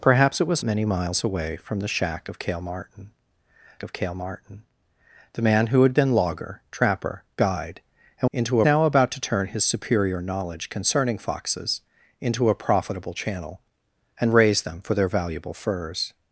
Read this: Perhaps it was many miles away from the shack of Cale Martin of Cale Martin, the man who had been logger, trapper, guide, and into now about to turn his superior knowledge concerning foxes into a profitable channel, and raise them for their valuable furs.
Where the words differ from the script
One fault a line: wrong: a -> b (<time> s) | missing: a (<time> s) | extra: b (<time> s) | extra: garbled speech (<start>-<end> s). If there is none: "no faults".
no faults